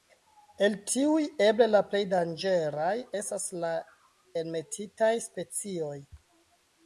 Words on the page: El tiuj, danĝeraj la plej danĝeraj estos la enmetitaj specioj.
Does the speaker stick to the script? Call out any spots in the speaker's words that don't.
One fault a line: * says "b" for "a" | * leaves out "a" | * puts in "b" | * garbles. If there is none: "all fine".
* says "eble" for "danĝeraj"
* says "estas" for "estos"